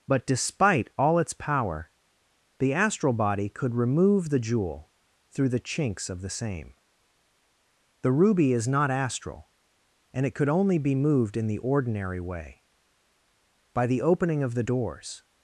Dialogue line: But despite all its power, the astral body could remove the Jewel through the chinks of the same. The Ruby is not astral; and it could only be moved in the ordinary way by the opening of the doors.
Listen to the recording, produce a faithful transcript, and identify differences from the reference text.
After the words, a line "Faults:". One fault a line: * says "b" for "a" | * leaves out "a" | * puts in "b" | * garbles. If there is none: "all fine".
But despite all its power, the astral body could remove the Jewel through the chinks of the same. The Ruby is not astral; and it could only be moved in the ordinary way by the opening of the doors.
Faults:
all fine